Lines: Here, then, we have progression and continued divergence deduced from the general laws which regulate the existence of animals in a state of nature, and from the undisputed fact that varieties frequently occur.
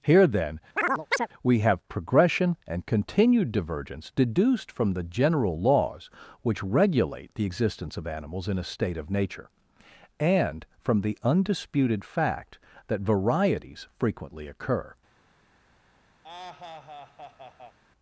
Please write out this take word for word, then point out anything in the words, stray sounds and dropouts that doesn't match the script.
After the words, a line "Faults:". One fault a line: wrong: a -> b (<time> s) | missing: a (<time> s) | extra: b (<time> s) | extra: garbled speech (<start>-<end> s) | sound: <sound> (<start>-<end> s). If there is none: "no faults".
Here, then, we have progression and continued divergence deduced from the general laws which regulate the existence of animals in a state of nature, and from the undisputed fact that varieties frequently occur.
Faults:
sound: chirp (0.8-1.3 s)
sound: laugh (16.2-17.8 s)